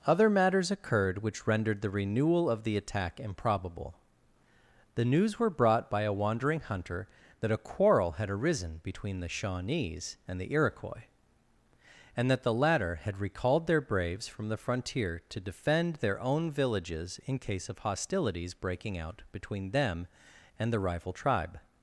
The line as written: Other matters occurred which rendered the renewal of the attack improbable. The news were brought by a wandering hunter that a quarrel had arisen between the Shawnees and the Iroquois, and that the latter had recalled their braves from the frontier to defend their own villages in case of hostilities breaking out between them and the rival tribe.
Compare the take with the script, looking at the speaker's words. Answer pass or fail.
pass